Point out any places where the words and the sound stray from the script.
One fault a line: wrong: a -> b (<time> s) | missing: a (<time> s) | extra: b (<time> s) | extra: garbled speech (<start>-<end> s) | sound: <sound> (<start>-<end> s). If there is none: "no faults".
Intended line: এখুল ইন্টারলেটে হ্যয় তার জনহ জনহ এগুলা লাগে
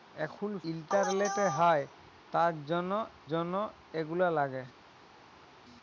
no faults